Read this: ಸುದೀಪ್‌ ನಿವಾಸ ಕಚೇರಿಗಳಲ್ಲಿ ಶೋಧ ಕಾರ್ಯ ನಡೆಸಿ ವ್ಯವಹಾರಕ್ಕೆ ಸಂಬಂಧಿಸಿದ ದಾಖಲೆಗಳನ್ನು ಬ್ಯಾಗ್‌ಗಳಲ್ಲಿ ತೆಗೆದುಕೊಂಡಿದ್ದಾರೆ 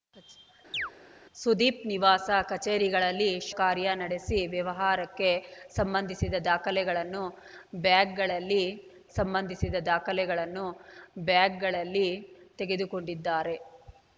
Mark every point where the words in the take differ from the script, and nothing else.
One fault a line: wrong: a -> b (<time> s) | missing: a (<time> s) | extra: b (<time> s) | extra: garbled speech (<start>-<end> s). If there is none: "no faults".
missing: ಶೋಧ (3.5 s)
extra: ಸಂಬಂಧಿಸಿದ ದಾಖಲೆಗಳನ್ನು ಬ್ಯಾಗ್‌ಗಳಲ್ಲಿ (9.1 s)